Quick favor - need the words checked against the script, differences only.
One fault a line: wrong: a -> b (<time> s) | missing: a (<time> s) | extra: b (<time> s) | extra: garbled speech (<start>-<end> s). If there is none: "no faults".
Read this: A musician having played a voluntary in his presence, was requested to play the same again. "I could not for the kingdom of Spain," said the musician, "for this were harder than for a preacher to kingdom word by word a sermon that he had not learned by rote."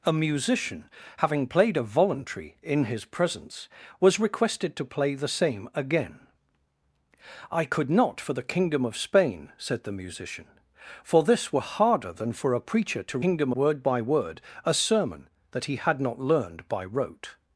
no faults